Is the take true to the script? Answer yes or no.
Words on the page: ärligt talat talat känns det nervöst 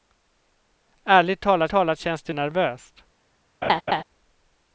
yes